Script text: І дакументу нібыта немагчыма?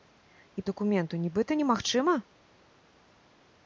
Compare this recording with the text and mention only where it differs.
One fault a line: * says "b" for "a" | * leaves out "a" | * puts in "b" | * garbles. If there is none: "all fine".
all fine